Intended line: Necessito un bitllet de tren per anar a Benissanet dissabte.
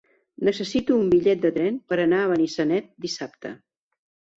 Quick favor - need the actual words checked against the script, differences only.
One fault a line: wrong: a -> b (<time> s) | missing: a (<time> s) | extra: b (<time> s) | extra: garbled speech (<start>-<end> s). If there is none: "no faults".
no faults